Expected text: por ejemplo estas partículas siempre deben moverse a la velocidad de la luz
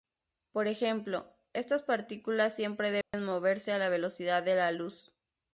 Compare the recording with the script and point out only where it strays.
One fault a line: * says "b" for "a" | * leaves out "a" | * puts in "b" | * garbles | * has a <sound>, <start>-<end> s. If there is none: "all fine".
* has a dropout, 3.0-3.1 s